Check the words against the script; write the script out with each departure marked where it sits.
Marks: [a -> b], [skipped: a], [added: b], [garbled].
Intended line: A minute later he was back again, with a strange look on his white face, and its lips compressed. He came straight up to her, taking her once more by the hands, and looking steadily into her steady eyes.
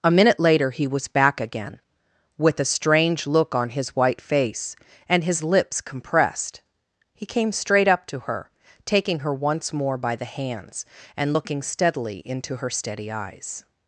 A minute later he was back again, with a strange look on his white face, and [its -> his] lips compressed. He came straight up to her, taking her once more by the hands, and looking steadily into her steady eyes.